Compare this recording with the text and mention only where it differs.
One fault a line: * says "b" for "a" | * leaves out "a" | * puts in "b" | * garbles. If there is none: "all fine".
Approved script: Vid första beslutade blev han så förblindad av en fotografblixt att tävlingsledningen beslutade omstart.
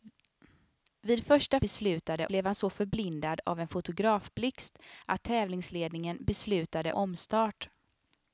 all fine